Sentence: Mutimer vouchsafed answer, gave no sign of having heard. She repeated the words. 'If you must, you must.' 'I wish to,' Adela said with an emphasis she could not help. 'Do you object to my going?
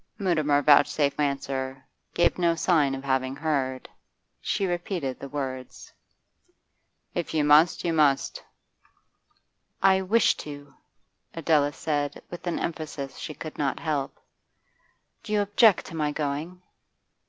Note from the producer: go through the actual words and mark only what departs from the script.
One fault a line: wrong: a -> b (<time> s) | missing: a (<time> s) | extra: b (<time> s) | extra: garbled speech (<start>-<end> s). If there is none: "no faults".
no faults